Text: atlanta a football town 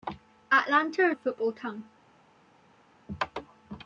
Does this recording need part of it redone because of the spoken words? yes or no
no